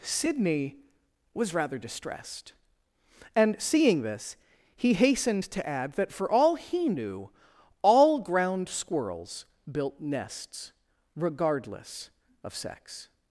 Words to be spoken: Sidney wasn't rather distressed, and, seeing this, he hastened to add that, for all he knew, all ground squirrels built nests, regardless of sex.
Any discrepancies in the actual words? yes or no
yes